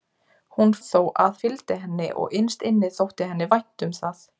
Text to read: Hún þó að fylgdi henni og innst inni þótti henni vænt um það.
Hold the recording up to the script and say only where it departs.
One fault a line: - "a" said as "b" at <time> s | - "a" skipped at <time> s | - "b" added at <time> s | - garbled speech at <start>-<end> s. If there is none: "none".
none